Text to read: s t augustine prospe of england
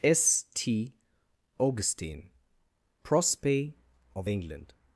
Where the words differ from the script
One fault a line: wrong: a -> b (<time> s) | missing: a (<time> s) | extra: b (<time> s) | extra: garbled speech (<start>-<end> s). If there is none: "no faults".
no faults